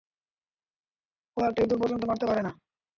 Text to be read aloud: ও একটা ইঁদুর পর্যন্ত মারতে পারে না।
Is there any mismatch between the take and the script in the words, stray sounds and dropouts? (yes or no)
no